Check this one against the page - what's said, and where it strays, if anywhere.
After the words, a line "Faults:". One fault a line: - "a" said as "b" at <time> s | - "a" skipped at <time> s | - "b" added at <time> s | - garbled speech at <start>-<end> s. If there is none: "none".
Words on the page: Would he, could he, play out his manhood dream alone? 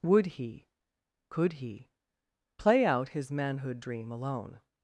Would he, could he, play out his manhood dream alone?
Faults:
none